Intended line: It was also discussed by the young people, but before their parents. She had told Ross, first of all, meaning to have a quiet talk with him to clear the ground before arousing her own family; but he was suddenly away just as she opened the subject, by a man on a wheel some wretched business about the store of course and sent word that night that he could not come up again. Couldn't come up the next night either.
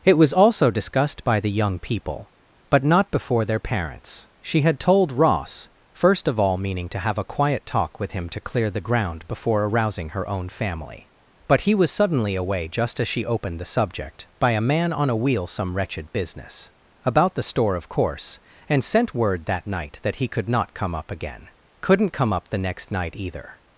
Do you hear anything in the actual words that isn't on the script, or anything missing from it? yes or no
yes